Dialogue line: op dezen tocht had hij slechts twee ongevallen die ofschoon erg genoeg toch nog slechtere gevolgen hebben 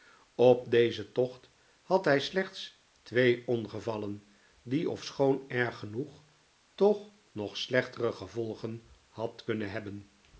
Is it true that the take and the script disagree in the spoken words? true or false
true